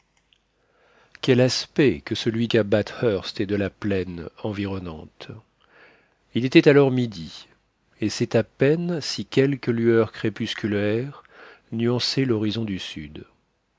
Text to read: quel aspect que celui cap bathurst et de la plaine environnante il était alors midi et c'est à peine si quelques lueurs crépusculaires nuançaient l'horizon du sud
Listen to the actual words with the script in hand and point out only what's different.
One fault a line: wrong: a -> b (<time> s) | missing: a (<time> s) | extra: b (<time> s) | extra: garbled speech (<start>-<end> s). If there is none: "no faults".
no faults